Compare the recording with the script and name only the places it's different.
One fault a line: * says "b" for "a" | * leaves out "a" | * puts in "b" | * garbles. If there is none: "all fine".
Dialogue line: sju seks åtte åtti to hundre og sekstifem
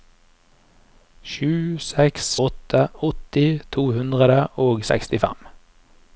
all fine